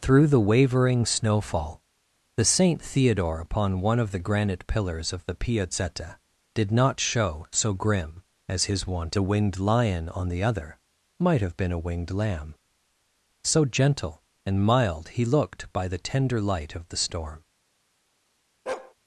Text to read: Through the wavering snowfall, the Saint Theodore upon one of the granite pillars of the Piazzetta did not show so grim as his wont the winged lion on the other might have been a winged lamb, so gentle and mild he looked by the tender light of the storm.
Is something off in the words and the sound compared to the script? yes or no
yes